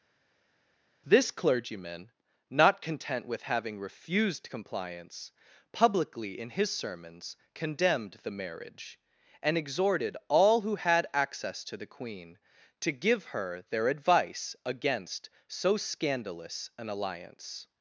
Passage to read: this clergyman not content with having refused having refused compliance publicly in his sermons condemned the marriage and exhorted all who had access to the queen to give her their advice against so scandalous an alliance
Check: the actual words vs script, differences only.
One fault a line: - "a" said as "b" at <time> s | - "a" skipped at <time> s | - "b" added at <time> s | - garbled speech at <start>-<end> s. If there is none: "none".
- "having refused" skipped at 4.5 s